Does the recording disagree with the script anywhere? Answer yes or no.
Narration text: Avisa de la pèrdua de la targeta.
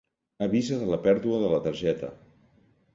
no